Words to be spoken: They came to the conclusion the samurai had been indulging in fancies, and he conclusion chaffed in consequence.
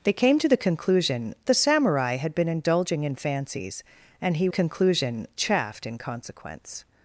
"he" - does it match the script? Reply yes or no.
yes